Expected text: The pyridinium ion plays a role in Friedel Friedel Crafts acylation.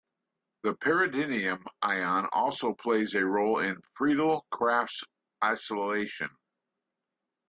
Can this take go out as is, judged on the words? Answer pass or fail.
fail